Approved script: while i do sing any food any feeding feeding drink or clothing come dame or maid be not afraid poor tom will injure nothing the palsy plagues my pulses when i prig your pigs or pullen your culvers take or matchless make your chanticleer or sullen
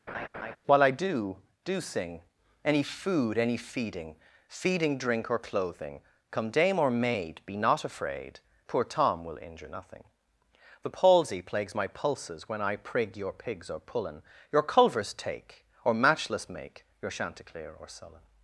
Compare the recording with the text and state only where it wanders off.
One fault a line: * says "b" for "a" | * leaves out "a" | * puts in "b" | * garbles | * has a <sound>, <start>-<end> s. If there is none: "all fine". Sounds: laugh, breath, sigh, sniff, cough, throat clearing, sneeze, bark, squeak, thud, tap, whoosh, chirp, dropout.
* has a laugh, 0.1-0.6 s
* puts in "do"